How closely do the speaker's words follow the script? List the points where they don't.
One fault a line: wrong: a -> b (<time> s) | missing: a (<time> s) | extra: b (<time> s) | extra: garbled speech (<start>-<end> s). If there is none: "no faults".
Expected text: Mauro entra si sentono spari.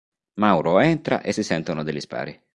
extra: e (1.2 s)
extra: degli (1.8 s)